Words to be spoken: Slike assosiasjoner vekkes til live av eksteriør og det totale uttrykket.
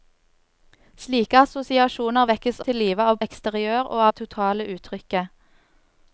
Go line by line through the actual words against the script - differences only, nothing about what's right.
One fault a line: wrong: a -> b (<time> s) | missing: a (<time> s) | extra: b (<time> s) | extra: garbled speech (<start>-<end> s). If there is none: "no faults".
no faults